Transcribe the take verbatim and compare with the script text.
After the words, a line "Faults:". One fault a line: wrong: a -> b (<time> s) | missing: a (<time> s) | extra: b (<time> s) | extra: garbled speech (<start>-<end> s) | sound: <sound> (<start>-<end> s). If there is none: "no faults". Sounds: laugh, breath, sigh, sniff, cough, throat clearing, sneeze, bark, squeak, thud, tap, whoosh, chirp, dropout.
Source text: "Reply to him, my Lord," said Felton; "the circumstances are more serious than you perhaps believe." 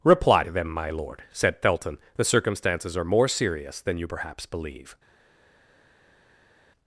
"Reply to them, my Lord," said Felton; "the circumstances are more serious than you perhaps believe."
Faults:
wrong: him -> them (0.5 s)